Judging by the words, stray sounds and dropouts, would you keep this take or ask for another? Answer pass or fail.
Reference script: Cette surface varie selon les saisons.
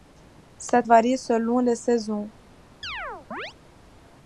fail